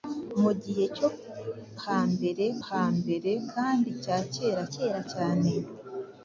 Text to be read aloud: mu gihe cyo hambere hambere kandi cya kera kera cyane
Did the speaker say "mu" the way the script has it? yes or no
yes